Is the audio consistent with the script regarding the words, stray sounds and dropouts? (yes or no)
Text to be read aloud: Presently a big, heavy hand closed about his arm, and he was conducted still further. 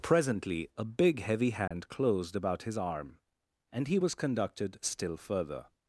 no